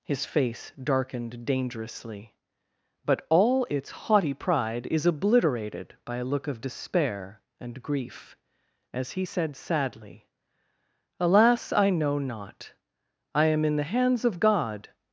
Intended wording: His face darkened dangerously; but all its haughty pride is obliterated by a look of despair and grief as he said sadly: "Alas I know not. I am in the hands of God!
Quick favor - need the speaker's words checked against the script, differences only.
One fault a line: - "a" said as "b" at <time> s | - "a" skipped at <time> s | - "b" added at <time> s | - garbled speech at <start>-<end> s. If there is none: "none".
none